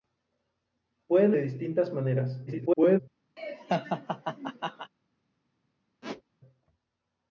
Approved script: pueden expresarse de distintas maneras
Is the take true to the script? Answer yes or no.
no